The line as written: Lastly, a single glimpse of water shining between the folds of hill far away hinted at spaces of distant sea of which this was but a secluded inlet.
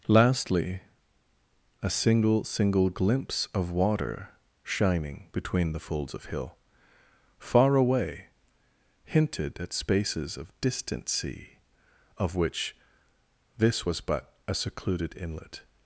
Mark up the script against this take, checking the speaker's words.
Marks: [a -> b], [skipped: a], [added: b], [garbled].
Lastly, a single [added: single] glimpse of water shining between the folds of hill far away hinted at spaces of distant sea of which this was but a secluded inlet.